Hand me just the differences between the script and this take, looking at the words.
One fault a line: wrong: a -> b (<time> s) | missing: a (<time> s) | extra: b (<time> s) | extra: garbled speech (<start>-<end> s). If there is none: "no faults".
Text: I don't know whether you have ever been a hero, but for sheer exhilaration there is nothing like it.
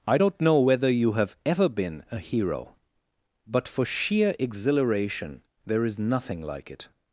no faults